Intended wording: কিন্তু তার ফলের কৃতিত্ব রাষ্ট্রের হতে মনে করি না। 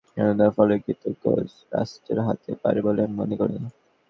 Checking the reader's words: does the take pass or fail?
fail